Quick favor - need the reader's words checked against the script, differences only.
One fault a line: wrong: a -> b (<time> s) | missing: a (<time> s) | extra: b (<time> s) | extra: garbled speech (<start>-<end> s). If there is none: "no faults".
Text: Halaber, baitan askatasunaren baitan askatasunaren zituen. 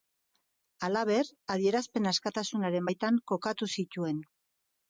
wrong: baitan -> adierazpen (1.6 s)
wrong: askatasunaren -> kokatu (3.4 s)